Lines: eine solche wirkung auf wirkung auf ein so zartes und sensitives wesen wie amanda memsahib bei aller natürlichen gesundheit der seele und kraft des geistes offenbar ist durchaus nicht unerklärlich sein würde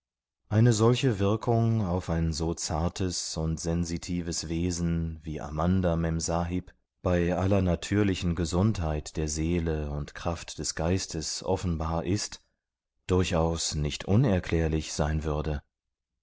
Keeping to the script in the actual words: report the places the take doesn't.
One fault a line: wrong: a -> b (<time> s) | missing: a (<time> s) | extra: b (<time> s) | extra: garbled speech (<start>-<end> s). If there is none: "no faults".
missing: wirkung auf (2.1 s)